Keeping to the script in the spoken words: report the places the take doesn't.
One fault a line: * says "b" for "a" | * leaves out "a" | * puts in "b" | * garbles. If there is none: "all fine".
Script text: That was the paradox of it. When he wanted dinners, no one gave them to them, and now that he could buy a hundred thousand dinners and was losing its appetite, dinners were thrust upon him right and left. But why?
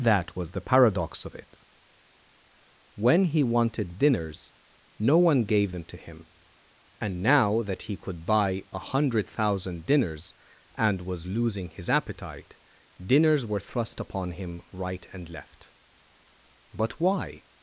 * says "him" for "them"
* says "his" for "its"